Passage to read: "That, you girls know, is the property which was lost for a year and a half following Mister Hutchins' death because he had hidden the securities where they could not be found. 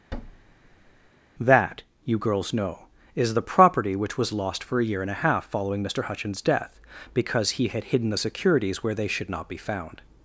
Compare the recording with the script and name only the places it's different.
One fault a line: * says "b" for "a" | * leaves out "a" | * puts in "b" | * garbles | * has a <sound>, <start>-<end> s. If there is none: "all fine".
* has a thud, 0.1-1.1 s
* says "should" for "could"